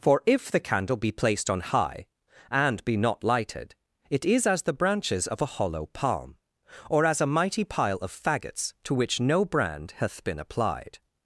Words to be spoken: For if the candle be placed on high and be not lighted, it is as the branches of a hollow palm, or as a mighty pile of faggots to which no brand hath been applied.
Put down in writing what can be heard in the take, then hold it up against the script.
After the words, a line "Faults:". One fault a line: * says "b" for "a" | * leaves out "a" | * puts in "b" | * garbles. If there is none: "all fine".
For if the candle be placed on high and be not lighted, it is as the branches of a hollow palm, or as a mighty pile of faggots to which no brand hath been applied.
Faults:
all fine